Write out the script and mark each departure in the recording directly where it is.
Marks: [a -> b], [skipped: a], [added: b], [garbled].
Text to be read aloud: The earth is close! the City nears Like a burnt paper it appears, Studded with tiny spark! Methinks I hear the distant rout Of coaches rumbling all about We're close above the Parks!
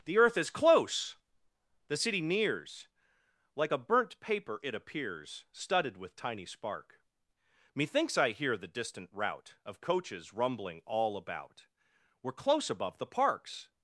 The earth is close! the City nears Like a burnt paper it appears, Studded with tiny spark! Methinks I hear the distant rout Of coaches rumbling all about We're close above the Parks!